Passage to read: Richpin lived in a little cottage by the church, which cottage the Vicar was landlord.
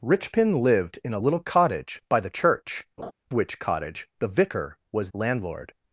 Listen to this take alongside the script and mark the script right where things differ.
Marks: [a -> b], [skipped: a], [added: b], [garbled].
Richpin lived in a little cottage by the church, which cottage the Vicar was landlord.